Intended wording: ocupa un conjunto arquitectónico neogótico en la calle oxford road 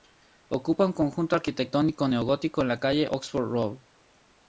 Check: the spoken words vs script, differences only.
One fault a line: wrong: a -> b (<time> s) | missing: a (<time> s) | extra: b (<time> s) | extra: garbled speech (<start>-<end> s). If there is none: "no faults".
no faults